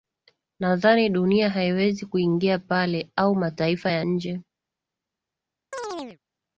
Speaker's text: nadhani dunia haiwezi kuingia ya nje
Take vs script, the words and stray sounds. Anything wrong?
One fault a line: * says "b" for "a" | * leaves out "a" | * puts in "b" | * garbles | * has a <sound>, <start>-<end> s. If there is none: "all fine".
* puts in "pale au mataifa"
* has a chirp, 5.7-6.2 s